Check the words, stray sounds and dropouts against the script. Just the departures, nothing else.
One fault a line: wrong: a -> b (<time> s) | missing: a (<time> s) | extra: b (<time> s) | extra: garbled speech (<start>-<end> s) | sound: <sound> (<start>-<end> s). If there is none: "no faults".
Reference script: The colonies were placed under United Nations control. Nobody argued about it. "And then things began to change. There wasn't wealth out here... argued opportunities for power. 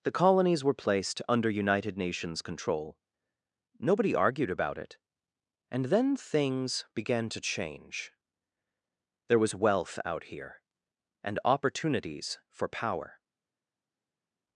wrong: wasn't -> was (9.4 s)
wrong: argued -> and (11.2 s)